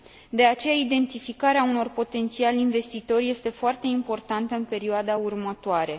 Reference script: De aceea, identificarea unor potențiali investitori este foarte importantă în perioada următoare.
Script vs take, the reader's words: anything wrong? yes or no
no